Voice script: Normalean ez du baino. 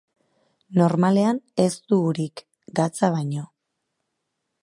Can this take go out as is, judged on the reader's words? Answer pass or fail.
fail